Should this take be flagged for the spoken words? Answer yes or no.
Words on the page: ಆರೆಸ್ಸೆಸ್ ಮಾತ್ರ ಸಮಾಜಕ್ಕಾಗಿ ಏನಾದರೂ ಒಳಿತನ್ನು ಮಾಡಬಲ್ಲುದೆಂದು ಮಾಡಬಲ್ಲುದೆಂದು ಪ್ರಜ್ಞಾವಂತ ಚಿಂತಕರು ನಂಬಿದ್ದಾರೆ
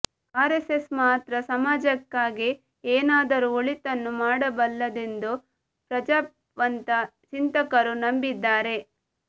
yes